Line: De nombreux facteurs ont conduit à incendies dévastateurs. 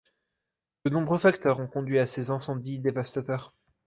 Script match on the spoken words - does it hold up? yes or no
no